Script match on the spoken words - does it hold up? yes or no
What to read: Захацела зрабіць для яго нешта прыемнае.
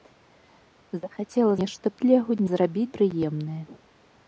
no